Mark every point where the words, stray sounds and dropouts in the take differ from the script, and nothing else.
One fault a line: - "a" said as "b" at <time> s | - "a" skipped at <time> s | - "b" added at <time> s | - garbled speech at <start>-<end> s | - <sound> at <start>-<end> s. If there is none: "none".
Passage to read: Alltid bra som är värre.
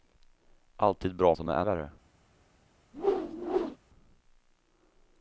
- whoosh at 2.9-3.8 s